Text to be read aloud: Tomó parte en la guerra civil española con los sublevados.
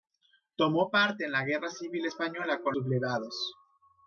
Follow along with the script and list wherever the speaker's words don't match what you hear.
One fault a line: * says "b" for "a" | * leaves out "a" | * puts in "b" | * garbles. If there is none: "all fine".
* leaves out "los"